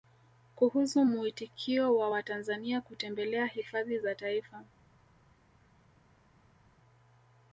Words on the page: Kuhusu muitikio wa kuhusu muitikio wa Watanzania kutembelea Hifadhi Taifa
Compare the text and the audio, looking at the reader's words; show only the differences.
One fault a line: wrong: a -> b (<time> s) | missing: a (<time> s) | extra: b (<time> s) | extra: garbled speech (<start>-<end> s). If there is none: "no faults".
missing: kuhusu muitikio wa (2.1 s)
extra: za (4.0 s)